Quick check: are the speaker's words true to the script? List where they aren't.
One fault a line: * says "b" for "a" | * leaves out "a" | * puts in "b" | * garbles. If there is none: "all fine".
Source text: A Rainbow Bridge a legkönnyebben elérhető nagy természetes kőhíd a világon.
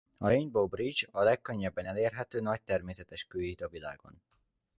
all fine